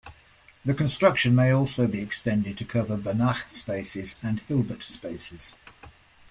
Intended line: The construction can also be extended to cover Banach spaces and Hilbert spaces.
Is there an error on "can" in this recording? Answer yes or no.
yes